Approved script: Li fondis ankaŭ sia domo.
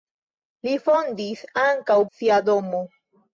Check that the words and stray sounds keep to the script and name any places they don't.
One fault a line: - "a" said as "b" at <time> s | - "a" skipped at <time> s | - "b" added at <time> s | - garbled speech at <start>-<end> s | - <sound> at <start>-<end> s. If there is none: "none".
none